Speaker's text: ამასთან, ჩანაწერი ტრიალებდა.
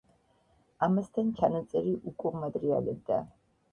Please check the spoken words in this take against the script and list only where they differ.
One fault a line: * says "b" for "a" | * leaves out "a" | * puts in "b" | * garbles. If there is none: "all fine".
* puts in "უკუღმა"